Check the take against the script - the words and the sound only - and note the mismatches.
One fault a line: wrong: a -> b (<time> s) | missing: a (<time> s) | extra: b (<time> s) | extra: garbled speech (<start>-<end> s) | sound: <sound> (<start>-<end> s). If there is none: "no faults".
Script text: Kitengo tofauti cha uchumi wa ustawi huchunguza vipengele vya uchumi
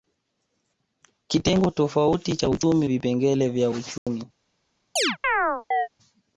missing: wa ustawi huchunguza (2.9 s)
sound: dropout (4.0-4.1 s)
sound: chirp (5.0-5.9 s)